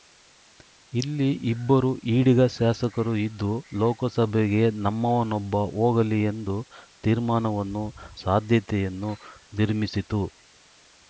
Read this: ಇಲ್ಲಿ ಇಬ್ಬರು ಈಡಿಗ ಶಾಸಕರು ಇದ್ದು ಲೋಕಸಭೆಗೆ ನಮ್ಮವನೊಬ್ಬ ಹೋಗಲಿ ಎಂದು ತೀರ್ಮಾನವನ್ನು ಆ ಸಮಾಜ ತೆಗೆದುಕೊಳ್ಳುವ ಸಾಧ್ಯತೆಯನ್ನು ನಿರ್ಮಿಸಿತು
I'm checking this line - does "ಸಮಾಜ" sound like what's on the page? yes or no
no